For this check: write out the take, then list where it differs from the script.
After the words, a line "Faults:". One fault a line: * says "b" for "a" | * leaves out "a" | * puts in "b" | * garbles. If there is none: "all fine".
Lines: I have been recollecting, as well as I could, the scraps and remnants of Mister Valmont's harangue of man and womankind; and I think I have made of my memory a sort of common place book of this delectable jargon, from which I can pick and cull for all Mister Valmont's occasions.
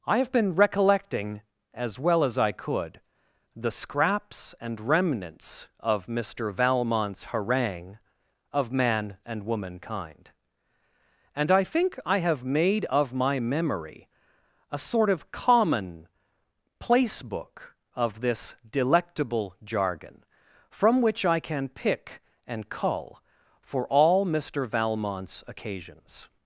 I have been recollecting, as well as I could, the scraps and remnants of Mister Valmont's harangue of man and womankind; and I think I have made of my memory a sort of common place book of this delectable jargon, from which I can pick and cull for all Mister Valmont's occasions.
Faults:
all fine